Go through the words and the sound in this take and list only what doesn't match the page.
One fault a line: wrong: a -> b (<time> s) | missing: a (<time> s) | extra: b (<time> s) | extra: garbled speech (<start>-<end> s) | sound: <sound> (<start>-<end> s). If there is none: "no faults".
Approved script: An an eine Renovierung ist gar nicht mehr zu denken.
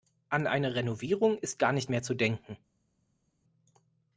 missing: an (0.5 s)